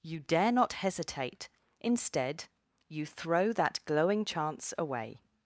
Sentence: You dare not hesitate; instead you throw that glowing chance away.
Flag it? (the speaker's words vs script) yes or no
no